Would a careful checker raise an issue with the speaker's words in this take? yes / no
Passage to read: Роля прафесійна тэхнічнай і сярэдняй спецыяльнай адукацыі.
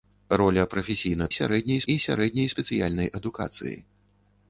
yes